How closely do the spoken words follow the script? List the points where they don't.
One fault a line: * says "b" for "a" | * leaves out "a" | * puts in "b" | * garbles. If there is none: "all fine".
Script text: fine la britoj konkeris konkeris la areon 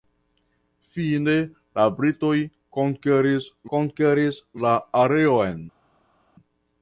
all fine